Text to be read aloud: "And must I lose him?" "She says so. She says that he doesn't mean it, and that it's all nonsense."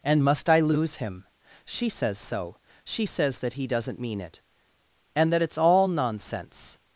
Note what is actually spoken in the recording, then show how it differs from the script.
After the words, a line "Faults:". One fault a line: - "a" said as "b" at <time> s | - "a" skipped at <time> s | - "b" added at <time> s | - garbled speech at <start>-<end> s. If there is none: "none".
"And must I lose him?" "She says so. She says that he doesn't mean it, and that it's all nonsense."
Faults:
none